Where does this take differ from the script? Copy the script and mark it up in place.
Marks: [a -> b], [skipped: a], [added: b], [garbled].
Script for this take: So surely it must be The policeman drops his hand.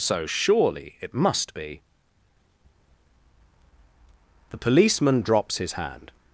So surely it must be The policeman drops his hand.